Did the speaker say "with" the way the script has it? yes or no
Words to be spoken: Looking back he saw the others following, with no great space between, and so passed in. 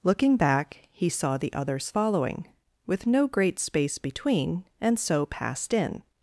yes